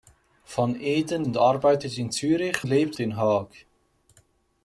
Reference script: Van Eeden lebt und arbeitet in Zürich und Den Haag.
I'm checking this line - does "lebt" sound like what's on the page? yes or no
no